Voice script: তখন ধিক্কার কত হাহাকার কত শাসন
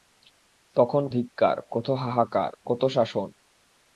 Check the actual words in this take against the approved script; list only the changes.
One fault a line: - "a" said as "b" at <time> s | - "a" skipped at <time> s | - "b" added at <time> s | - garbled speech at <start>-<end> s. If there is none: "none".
none